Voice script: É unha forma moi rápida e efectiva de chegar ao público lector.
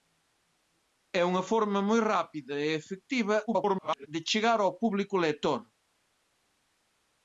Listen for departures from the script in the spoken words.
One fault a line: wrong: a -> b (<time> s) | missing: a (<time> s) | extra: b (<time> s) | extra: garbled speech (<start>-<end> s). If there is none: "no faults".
extra: garbled speech (3.5-4.1 s)